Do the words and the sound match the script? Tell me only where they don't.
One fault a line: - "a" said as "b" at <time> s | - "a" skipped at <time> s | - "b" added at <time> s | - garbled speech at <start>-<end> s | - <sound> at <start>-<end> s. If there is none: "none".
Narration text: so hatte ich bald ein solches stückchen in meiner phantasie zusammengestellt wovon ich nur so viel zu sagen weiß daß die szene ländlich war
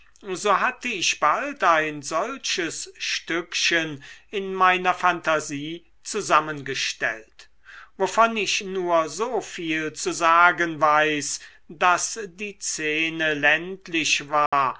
- dropout at 14.5-14.5 s